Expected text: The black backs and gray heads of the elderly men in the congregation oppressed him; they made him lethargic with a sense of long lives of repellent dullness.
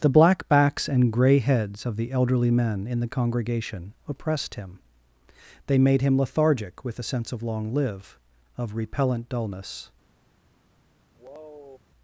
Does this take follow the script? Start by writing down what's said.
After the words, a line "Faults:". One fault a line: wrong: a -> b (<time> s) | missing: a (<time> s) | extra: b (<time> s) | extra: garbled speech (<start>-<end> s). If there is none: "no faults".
The black backs and gray heads of the elderly men in the congregation oppressed him; they made him lethargic with a sense of long live of repellent dullness.
Faults:
wrong: lives -> live (7.7 s)